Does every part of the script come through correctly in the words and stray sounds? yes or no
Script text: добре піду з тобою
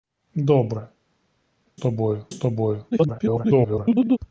no